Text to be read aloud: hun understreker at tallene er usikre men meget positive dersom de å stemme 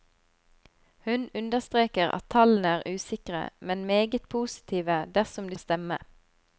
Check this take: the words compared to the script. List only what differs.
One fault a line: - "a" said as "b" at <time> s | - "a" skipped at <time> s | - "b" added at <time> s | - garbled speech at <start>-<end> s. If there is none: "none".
none